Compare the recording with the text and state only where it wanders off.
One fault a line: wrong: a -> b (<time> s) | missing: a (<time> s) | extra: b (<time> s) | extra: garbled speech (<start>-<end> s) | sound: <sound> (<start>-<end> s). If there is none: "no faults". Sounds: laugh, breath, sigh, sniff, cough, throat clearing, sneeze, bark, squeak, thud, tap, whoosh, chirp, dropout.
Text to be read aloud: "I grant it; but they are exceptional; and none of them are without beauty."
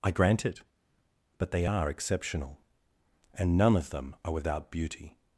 no faults